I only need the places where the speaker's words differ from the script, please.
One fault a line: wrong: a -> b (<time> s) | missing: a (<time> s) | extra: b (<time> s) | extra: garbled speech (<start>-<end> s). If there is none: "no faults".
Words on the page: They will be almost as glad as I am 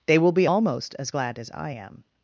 no faults